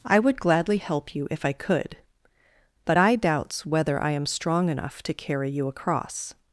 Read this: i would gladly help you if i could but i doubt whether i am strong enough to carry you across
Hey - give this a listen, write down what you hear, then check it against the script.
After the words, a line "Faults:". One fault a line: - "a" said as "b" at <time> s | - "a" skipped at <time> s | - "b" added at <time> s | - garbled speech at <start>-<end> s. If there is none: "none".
i would gladly help you if i could but i doubts whether i am strong enough to carry you across
Faults:
- "doubt" said as "doubts" at 3.2 s